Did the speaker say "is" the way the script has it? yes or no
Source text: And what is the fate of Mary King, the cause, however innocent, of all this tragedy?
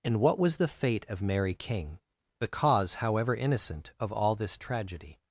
no